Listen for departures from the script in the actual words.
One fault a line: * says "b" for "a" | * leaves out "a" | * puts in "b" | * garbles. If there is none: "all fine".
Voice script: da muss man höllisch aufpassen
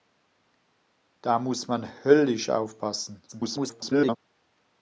* garbles